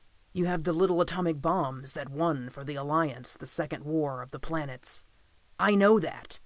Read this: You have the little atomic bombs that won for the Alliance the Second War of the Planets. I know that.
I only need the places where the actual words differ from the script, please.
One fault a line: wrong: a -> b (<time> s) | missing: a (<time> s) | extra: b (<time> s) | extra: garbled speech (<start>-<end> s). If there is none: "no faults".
no faults